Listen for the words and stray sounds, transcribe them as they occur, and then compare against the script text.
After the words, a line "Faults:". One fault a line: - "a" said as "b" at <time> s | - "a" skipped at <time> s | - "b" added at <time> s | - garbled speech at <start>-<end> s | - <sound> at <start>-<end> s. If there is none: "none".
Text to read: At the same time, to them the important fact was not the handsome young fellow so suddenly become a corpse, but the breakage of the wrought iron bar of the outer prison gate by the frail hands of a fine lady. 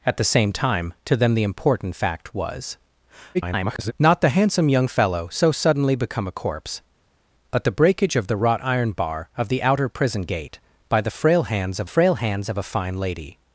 At the same time, to them the important fact was [garbled] not the handsome young fellow so suddenly become a corpse, but the breakage of the wrought iron bar of the outer prison gate by the frail hands of frail hands of a fine lady.
Faults:
- garbled speech at 3.3-3.9 s
- "frail hands of" added at 11.8 s